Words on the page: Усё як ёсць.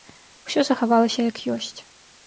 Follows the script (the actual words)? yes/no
no